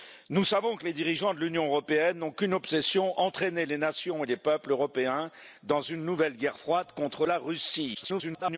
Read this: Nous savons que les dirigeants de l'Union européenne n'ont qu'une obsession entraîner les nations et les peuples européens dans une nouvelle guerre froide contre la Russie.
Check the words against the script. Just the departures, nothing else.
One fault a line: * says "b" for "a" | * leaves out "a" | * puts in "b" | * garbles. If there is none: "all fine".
* garbles